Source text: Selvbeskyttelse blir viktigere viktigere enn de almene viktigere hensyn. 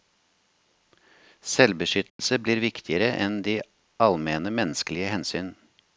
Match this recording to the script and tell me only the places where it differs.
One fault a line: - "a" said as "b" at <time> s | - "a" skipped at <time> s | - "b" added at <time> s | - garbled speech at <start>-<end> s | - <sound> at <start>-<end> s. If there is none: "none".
- dropout at 2.1-2.2 s
- "viktigere" skipped at 3.1 s
- "viktigere" said as "menneskelige" at 4.5 s